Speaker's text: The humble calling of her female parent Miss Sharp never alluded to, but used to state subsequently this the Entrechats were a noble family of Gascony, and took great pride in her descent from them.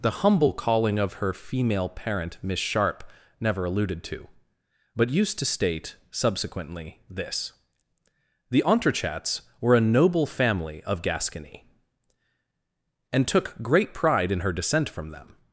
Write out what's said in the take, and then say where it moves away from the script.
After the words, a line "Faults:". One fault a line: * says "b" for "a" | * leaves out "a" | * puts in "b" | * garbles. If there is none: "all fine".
The humble calling of her female parent Miss Sharp never alluded to, but used to state subsequently this the Entrechats were a noble family of Gascony, and took great pride in her descent from them.
Faults:
all fine